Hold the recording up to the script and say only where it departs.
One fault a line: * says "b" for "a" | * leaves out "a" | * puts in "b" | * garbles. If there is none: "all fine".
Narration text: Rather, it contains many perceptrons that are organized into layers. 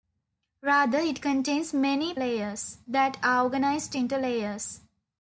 * says "layers" for "perceptrons"